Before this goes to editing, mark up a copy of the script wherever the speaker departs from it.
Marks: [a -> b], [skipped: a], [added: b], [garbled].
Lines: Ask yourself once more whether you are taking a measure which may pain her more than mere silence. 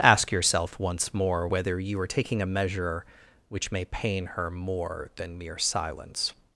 Ask yourself once more whether you are taking a measure which may pain her more than mere silence.